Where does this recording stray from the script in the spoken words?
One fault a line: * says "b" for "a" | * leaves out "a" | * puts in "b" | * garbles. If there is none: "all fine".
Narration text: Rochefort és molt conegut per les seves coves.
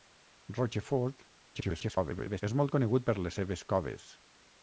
* garbles